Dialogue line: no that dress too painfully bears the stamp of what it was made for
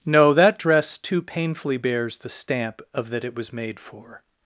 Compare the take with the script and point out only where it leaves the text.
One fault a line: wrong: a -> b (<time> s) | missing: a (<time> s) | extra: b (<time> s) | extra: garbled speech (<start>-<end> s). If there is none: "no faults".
wrong: what -> that (3.1 s)